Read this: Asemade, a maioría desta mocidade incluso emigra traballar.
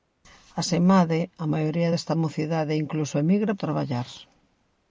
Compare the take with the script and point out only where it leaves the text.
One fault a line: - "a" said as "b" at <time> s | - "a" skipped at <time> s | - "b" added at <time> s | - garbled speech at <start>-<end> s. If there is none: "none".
none